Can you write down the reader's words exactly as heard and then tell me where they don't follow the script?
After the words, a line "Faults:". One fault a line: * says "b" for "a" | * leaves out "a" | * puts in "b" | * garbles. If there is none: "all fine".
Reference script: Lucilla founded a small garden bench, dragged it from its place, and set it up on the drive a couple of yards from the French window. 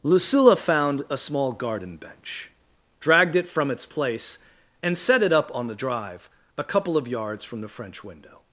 Lucilla found a small garden bench, dragged it from its place, and set it up on the drive a couple of yards from the French window.
Faults:
* says "found" for "founded"